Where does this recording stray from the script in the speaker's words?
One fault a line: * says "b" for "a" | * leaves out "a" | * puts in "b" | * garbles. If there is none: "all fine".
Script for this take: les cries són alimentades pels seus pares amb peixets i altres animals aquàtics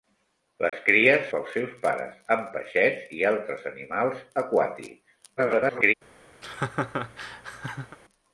* leaves out "són alimentades"
* garbles